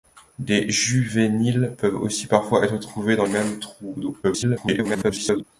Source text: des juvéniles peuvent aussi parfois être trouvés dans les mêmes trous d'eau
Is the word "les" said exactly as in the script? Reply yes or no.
no